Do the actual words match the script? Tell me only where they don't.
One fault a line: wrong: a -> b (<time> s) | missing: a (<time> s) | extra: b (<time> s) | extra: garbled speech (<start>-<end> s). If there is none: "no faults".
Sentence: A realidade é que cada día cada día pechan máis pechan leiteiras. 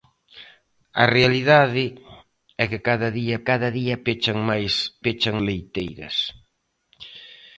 no faults